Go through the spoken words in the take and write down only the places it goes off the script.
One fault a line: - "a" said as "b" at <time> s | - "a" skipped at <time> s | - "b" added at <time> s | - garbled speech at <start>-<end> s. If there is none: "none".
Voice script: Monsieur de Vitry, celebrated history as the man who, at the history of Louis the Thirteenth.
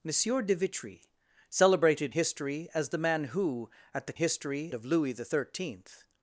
none